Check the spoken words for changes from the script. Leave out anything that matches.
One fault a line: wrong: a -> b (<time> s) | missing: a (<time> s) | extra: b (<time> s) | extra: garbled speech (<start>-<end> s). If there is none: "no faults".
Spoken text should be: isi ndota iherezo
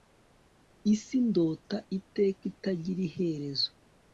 extra: iteka itagira (2.0 s)